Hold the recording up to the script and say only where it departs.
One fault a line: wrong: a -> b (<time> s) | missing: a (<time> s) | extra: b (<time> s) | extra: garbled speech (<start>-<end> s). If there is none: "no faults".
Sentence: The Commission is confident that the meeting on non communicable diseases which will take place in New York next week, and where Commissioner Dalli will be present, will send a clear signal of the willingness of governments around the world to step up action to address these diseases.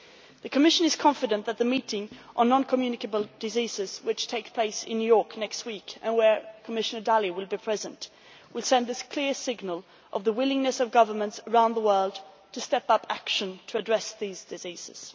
no faults